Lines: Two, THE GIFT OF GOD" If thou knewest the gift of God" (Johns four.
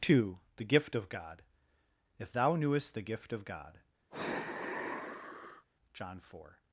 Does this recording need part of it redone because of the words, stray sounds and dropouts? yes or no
yes